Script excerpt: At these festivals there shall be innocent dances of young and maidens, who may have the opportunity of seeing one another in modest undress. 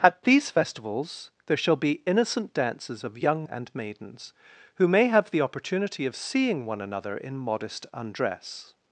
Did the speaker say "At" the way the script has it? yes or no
yes